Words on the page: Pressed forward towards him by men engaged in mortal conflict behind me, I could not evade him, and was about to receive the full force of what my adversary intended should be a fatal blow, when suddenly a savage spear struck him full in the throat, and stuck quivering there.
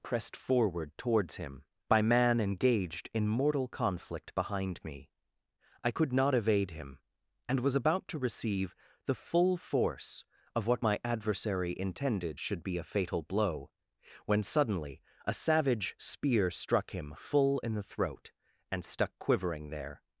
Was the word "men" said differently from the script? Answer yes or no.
yes